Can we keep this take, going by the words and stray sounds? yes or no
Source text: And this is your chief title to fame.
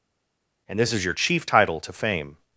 yes